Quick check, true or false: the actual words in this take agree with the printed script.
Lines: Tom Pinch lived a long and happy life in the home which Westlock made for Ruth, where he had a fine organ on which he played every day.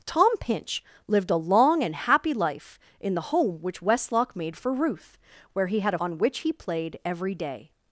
false